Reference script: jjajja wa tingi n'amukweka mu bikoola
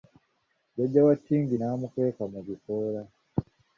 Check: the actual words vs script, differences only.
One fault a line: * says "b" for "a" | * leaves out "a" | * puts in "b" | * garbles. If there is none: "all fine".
all fine